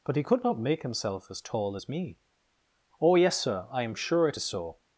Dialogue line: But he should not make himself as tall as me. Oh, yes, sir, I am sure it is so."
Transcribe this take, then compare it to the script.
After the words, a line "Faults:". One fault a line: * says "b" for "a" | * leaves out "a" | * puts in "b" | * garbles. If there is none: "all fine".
But he could not make himself as tall as me. Oh, yes, sir, I am sure it is so."
Faults:
* says "could" for "should"